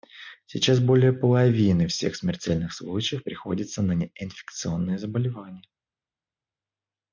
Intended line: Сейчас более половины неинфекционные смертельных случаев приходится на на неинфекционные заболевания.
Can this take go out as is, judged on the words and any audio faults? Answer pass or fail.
fail